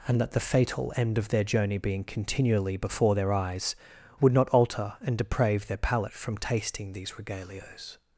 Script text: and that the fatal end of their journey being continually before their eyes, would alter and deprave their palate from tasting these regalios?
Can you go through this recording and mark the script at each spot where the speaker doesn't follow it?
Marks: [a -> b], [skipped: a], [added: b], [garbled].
and that the fatal end of their journey being continually before their eyes, would [added: not] alter and deprave their palate from tasting these regalios?